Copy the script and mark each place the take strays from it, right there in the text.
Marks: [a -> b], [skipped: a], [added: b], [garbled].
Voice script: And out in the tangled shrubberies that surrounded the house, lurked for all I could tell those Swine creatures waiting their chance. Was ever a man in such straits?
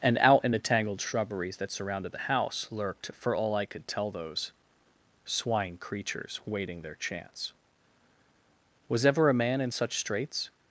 And out in the tangled shrubberies that surrounded the house, lurked for all I could tell those Swine creatures waiting their chance. Was ever a man in such straits?